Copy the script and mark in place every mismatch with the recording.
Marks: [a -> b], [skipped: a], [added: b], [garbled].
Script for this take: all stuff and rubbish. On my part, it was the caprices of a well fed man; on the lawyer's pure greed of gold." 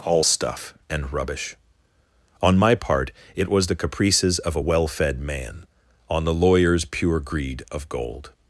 all stuff and rubbish. On my part, it was the caprices of a well fed man; on the lawyer's pure greed of gold."